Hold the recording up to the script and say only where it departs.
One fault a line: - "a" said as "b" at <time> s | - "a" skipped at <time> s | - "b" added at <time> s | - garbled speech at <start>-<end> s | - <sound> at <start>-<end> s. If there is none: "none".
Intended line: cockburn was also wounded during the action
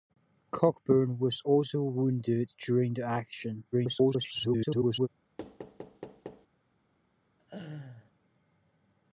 - garbled speech at 3.7-5.1 s
- thud at 5.4-6.5 s
- laugh at 7.4-8.1 s